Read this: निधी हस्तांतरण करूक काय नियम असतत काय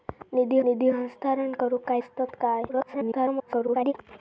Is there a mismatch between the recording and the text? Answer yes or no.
yes